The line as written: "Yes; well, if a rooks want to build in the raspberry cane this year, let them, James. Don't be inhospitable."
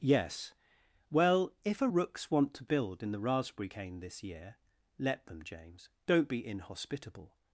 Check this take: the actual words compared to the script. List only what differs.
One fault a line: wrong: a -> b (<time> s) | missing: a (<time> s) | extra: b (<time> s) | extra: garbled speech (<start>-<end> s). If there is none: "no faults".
no faults